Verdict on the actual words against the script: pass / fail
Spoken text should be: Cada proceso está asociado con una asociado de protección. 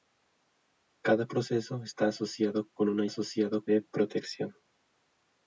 pass